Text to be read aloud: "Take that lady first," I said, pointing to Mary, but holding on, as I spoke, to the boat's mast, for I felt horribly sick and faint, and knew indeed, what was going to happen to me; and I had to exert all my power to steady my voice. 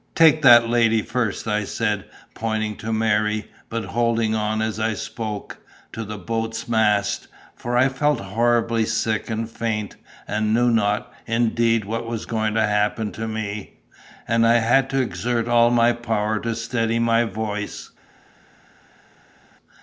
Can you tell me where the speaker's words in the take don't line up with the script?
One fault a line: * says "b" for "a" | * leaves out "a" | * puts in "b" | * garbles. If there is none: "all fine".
* puts in "not"